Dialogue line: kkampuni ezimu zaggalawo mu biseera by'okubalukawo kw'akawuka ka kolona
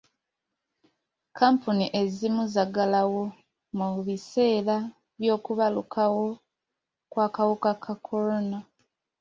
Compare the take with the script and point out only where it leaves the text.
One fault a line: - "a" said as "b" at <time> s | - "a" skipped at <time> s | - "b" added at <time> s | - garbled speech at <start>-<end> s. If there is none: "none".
none